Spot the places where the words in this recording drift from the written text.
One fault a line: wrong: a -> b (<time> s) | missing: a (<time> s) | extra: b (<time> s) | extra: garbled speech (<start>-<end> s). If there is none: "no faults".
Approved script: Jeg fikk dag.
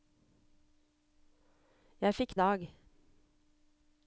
no faults